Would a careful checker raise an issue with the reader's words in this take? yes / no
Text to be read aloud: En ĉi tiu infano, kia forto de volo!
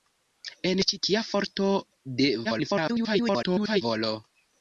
yes